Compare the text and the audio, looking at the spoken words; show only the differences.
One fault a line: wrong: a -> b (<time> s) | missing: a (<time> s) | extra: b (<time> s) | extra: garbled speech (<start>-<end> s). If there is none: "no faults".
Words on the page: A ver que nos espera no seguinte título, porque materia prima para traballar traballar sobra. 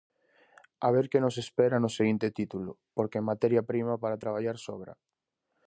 missing: traballar (4.6 s)